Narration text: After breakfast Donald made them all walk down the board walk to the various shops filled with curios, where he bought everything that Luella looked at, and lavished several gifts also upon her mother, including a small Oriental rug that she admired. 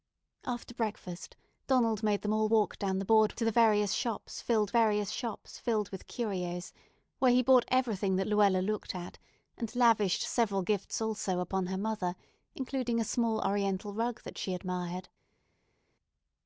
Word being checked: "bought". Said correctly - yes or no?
yes